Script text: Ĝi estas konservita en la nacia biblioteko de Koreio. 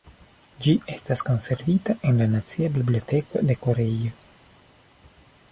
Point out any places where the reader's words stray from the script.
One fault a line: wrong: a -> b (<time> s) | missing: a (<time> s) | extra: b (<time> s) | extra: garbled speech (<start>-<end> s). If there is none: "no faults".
no faults